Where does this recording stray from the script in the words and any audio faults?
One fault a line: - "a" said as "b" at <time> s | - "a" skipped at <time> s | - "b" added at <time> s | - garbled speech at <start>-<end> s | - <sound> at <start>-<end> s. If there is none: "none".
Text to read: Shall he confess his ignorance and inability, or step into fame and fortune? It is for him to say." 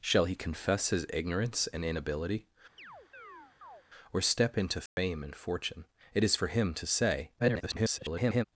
- chirp at 2.8-3.8 s
- dropout at 4.9-5.0 s
- garbled speech at 7.4-8.4 s